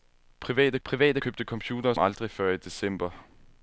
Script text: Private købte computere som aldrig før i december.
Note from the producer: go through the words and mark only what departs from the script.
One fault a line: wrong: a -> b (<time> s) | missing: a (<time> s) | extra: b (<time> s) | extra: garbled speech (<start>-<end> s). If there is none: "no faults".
extra: private (0.8 s)
missing: som (2.0 s)